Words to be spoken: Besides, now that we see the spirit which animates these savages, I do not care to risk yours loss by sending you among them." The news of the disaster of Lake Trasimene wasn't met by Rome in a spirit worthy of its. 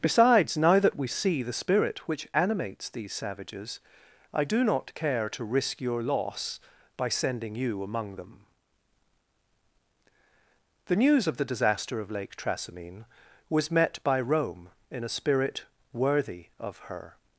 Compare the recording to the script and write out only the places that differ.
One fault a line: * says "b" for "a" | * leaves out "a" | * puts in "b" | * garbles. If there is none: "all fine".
* says "your" for "yours"
* says "was" for "wasn't"
* says "her" for "its"